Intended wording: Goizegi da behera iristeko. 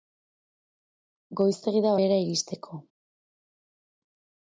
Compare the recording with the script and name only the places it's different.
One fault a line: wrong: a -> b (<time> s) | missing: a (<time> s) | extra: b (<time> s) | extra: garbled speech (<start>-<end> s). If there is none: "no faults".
no faults